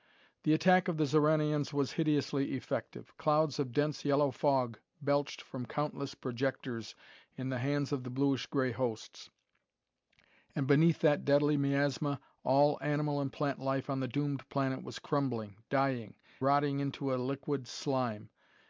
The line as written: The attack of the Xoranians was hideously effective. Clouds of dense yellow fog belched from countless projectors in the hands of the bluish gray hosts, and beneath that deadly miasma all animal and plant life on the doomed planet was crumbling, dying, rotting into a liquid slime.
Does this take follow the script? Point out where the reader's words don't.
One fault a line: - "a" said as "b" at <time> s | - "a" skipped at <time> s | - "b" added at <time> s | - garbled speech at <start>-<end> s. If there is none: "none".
none